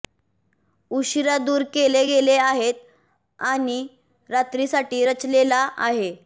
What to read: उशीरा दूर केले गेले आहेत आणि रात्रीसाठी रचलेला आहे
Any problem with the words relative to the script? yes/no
no